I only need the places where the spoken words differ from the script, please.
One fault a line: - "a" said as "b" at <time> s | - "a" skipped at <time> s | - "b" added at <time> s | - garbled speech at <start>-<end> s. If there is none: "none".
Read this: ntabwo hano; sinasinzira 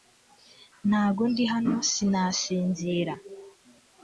- "ndi" added at 1.3 s